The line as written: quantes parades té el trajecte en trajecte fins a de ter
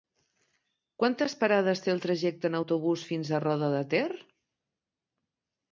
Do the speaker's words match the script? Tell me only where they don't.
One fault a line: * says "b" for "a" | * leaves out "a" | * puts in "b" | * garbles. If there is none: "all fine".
* says "autobús" for "trajecte"
* puts in "roda"